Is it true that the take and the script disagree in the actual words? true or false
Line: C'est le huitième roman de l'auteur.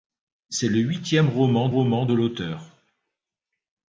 true